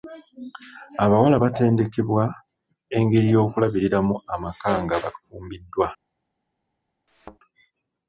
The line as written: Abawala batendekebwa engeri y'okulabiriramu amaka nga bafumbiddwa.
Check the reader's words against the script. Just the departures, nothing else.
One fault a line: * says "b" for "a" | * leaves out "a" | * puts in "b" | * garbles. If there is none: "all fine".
all fine